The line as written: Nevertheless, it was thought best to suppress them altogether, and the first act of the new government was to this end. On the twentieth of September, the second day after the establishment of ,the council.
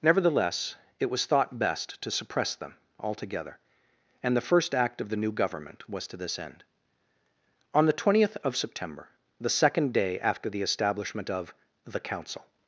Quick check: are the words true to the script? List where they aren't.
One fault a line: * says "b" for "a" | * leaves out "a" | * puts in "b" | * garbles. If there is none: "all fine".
all fine